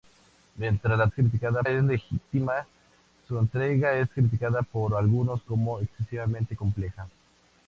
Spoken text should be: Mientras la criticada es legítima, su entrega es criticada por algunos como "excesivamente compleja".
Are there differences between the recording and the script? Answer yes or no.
no